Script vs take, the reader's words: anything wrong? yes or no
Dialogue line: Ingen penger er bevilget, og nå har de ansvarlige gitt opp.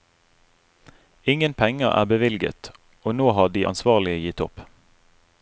no